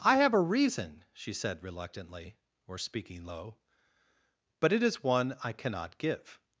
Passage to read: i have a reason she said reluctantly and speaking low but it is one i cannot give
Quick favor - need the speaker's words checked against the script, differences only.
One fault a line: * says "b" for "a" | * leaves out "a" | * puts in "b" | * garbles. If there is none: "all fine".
* says "or" for "and"